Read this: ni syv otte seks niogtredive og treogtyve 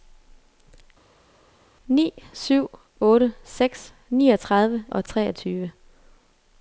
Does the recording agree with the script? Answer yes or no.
yes